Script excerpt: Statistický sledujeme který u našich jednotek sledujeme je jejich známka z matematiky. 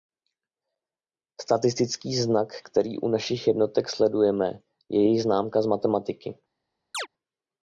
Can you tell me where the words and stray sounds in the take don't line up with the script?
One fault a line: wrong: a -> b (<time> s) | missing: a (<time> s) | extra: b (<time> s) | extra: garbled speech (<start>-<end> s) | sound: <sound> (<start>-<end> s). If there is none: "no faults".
wrong: sledujeme -> znak (2.1 s)
sound: chirp (6.9-7.1 s)